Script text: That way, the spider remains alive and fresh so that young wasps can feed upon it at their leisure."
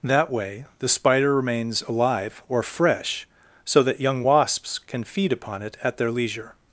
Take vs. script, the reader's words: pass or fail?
fail